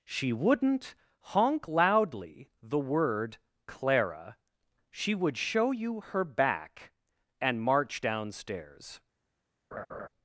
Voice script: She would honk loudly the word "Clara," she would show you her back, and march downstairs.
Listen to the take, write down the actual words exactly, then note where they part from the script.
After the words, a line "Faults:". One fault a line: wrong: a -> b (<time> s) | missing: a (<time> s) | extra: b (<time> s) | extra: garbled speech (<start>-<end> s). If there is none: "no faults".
She wouldn't honk loudly the word "Clara," she would show you her back, and march downstairs.
Faults:
wrong: would -> wouldn't (0.3 s)